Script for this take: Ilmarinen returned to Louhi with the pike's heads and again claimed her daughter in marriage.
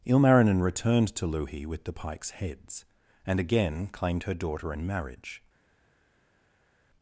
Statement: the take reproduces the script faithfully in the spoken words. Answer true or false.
true